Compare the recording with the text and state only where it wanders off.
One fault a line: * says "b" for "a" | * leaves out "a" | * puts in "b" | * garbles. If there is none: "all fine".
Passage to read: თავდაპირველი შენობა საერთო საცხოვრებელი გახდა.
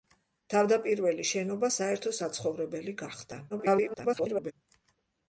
* garbles